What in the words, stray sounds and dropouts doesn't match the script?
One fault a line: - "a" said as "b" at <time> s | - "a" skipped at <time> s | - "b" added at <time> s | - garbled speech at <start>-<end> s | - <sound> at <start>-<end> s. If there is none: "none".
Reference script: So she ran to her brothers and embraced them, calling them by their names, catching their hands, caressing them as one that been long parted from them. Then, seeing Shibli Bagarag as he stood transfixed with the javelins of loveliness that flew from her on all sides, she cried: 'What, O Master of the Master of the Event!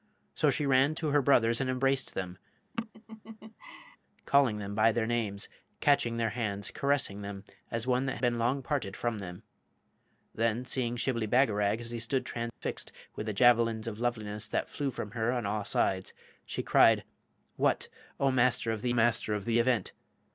- laugh at 2.7-4.0 s
- dropout at 12.5-12.6 s